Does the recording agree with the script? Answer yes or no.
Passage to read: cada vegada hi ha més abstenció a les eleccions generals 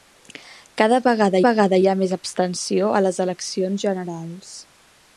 no